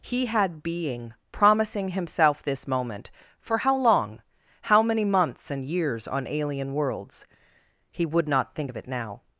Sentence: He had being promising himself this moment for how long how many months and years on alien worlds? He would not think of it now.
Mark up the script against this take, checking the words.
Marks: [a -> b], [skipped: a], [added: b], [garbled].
He had being promising himself this moment for how long how many months and years on alien worlds? He would not think of it now.